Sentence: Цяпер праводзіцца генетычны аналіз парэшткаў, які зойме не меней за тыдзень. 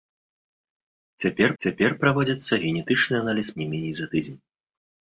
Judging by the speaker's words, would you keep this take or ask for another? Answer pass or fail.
fail